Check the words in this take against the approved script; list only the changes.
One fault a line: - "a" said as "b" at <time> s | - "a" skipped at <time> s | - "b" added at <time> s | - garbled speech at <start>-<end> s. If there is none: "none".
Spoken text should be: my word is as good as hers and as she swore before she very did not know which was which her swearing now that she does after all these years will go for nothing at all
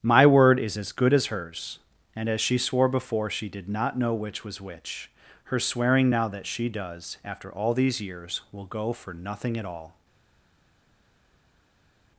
- "very" skipped at 3.5 s